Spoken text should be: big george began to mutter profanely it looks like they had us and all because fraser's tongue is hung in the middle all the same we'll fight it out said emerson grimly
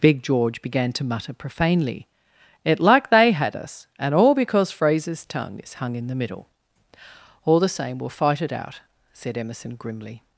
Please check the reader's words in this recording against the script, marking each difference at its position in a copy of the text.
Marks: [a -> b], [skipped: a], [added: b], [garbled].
big george began to mutter profanely it [skipped: looks] like they had us and all because fraser's tongue is hung in the middle all the same we'll fight it out said emerson grimly